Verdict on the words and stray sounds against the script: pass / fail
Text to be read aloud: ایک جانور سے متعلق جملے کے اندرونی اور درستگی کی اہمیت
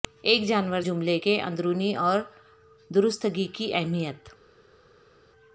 fail